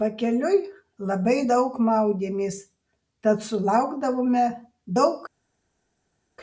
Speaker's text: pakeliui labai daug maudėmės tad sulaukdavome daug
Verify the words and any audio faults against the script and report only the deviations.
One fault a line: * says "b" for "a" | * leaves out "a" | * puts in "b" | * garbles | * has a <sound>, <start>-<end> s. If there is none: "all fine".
all fine